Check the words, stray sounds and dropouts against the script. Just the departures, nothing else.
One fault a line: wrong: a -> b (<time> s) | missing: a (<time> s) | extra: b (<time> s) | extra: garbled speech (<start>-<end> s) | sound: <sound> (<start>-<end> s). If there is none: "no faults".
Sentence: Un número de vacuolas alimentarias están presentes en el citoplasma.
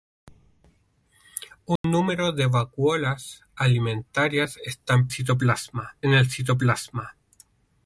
sound: dropout (1.8-1.8 s)
wrong: presentes -> citoplasma (5.1 s)